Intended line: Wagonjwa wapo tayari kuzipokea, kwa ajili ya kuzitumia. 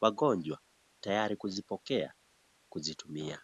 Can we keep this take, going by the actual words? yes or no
no